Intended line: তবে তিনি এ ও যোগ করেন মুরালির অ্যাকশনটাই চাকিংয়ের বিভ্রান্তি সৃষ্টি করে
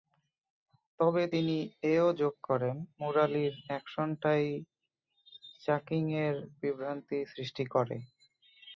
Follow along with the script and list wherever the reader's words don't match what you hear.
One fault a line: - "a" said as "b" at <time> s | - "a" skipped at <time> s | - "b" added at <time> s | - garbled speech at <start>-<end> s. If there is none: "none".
none